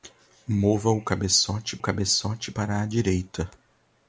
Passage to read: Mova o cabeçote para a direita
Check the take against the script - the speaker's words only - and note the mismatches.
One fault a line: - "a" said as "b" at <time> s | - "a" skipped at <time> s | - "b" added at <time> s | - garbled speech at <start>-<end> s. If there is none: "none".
- "cabeçote" added at 1.8 s